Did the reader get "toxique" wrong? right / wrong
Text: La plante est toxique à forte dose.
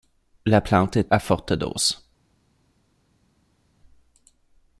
wrong